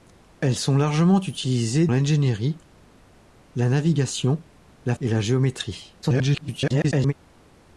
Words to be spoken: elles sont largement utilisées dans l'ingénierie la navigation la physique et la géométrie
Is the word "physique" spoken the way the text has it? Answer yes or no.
no